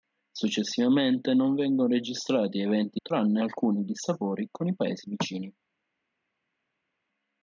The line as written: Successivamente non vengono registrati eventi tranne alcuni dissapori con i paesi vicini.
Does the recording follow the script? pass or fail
pass